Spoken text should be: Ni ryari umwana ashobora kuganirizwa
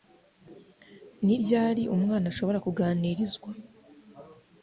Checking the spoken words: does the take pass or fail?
pass